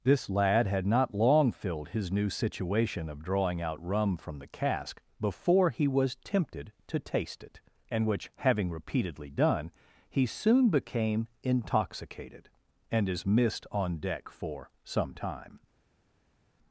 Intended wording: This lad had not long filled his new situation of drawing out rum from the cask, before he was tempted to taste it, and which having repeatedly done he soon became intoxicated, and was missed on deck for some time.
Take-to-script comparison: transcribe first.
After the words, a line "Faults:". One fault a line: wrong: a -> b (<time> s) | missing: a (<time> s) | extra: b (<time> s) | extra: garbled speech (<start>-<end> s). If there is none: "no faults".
This lad had not long filled his new situation of drawing out rum from the cask, before he was tempted to taste it, and which having repeatedly done he soon became intoxicated, and is missed on deck for some time.
Faults:
wrong: was -> is (13.1 s)